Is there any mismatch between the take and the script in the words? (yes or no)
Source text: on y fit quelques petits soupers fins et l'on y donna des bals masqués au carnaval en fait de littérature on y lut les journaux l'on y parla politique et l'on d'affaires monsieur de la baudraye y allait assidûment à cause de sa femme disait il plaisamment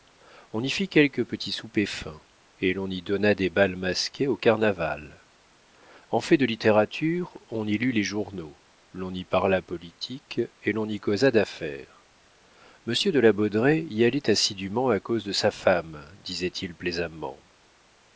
yes